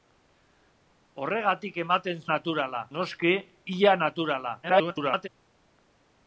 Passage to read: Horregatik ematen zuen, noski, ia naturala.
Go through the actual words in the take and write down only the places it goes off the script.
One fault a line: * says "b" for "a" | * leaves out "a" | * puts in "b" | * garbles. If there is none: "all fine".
* says "naturala" for "zuen"
* garbles